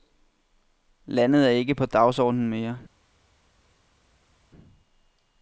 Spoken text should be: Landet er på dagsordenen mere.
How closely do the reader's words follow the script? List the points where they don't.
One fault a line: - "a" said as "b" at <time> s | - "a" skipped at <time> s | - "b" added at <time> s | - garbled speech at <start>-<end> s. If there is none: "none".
- "ikke" added at 1.5 s